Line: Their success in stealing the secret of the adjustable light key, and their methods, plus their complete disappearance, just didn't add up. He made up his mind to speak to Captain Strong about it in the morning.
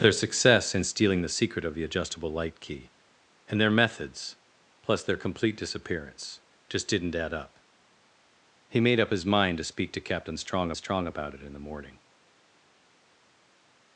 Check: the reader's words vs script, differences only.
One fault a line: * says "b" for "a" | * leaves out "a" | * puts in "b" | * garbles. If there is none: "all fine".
* puts in "Strong"